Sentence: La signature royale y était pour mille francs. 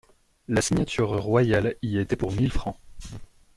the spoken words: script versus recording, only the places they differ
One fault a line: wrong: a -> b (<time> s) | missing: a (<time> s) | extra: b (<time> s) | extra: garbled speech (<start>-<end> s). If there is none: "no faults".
no faults